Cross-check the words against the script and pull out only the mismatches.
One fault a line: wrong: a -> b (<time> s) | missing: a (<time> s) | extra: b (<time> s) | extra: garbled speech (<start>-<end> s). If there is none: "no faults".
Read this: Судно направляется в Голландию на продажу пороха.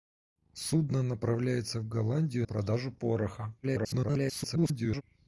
missing: на (2.5 s)
extra: garbled speech (3.6-5.0 s)